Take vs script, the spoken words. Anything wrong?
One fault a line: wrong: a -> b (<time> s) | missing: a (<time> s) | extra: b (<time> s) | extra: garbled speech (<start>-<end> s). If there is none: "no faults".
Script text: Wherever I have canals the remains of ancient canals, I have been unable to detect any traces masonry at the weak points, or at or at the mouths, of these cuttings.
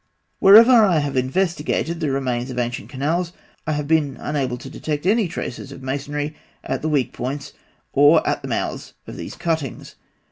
wrong: canals -> investigated (1.1 s)
extra: of (5.7 s)
missing: or at (8.4 s)